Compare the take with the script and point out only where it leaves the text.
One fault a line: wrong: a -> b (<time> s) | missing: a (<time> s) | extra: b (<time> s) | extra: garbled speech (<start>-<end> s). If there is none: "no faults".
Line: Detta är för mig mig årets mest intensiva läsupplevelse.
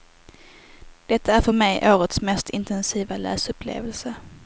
missing: mig (1.9 s)